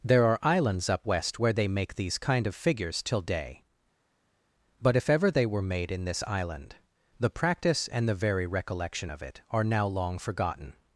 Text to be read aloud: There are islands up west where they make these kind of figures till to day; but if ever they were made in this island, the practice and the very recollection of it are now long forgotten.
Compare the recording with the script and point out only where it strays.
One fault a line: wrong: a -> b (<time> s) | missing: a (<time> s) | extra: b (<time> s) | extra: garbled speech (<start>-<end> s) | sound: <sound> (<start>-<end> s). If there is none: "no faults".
missing: to (3.2 s)